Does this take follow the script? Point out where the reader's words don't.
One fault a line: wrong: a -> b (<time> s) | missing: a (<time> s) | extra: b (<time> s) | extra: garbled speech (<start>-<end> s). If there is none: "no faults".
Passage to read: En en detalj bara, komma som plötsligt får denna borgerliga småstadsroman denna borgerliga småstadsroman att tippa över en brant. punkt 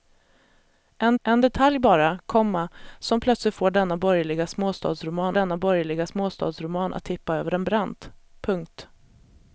no faults